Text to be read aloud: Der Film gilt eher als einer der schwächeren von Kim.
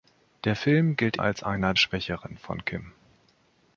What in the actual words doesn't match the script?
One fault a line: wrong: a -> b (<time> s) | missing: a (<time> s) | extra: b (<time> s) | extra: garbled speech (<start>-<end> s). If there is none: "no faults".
missing: eher (1.2 s)
missing: der (1.7 s)